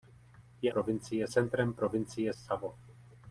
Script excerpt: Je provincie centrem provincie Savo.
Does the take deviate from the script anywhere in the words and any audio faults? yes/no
no